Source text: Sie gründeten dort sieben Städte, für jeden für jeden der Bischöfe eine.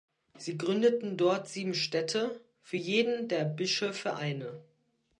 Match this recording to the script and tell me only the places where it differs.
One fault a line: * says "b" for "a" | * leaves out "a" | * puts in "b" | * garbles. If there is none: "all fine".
* leaves out "für jeden"